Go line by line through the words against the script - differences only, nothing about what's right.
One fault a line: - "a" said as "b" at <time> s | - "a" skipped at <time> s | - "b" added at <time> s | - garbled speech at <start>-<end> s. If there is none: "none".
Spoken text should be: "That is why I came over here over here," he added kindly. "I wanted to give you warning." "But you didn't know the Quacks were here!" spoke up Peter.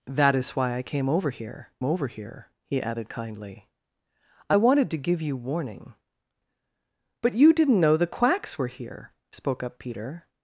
none